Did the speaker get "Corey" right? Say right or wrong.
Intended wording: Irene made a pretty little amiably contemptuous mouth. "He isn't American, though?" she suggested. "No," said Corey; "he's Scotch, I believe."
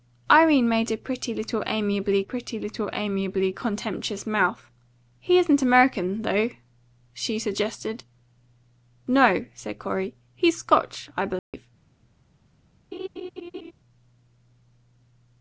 right